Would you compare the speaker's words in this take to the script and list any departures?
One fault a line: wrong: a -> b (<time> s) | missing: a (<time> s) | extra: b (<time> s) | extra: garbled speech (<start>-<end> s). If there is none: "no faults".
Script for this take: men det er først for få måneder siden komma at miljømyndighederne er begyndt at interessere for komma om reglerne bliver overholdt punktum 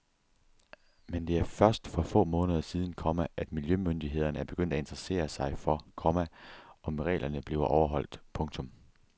extra: sig (5.3 s)